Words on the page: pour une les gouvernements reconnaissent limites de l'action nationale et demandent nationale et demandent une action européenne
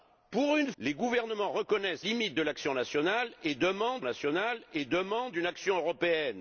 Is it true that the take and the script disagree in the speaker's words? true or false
false